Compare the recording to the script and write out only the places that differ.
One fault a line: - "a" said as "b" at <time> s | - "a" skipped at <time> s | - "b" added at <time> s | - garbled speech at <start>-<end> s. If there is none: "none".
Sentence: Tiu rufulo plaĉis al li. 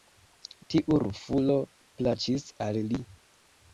none